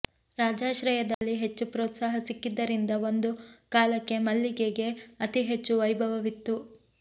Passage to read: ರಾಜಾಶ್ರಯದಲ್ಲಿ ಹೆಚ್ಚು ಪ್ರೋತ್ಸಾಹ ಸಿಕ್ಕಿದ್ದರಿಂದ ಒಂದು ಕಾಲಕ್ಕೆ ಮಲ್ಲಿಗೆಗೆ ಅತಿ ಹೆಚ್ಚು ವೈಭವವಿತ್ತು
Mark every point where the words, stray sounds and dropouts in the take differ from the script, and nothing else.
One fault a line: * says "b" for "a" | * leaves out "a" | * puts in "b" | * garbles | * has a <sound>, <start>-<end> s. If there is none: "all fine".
* has a dropout, 1.1-1.2 s